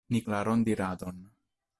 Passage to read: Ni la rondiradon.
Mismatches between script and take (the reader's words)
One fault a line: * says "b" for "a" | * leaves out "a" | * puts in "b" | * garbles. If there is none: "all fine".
all fine